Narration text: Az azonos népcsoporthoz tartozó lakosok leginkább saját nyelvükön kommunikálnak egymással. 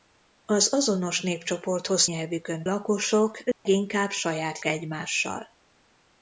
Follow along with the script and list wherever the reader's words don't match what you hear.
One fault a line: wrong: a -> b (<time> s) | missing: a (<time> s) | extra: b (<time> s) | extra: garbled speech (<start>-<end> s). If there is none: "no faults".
wrong: tartozó -> nyelvükön (2.0 s)
missing: nyelvükön kommunikálnak (4.6 s)